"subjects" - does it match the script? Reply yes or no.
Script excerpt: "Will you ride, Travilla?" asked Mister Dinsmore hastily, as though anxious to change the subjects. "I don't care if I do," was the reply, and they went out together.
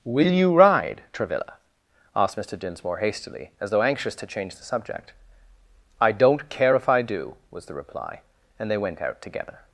no